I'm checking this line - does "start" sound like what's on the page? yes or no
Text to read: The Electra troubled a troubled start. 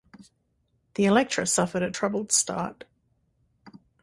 yes